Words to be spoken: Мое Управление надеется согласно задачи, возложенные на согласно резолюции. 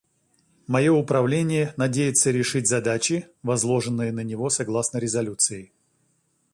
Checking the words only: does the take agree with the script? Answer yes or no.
no